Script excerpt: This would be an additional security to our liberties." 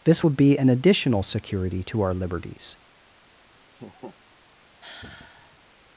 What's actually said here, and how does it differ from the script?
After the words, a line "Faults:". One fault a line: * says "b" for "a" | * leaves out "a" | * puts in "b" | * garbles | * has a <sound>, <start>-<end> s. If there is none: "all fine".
This would be an additional security to our liberties."
Faults:
* has a laugh, 3.7-4.2 s
* has a sigh, 4.8-5.7 s